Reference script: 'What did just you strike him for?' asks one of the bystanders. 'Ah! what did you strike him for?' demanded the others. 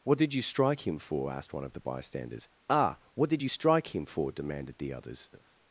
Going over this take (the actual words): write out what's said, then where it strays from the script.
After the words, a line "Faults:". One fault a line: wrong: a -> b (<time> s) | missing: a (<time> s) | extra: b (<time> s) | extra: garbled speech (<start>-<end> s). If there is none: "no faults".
'What did you strike him for?' asked one of the bystanders. 'Ah! what did you strike him for?' demanded the others.
Faults:
missing: just (0.3 s)
wrong: asks -> asked (1.3 s)